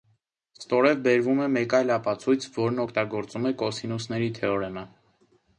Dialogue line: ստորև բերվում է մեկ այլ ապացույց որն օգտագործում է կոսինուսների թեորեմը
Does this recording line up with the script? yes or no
yes